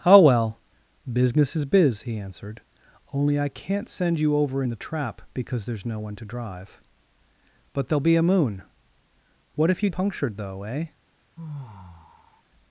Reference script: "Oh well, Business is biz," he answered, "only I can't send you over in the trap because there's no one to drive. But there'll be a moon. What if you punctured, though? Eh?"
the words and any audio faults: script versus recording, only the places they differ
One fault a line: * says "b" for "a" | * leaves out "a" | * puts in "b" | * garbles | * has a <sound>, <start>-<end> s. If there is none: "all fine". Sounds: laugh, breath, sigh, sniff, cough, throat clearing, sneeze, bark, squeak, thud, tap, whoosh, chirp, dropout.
* has a sigh, 11.4-12.4 s